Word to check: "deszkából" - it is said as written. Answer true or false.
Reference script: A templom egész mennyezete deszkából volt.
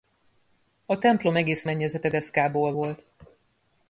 true